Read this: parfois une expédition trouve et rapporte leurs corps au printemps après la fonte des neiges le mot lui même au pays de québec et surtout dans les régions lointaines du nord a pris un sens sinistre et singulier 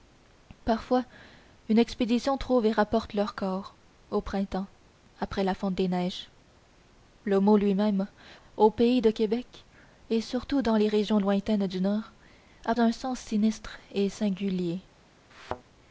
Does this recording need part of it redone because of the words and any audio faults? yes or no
yes